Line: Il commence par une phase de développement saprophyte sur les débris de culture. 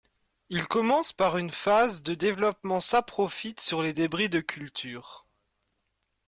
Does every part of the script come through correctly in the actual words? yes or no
yes